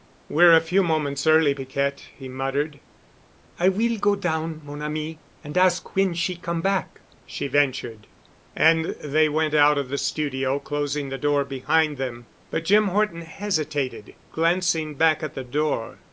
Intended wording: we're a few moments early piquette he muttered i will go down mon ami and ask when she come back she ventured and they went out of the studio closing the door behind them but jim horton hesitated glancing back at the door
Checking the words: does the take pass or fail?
pass